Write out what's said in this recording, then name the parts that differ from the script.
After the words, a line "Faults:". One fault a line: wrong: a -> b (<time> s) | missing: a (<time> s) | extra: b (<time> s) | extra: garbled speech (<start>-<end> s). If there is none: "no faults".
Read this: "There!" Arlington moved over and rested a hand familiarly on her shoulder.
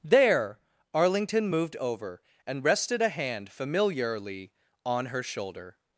"There!" Arlington moved over and rested a hand familiarly on her shoulder.
Faults:
no faults